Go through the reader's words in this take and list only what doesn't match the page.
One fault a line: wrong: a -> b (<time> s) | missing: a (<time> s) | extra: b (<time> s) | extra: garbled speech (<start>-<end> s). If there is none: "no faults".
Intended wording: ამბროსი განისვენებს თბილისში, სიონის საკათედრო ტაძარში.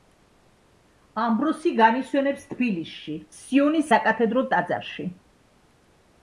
no faults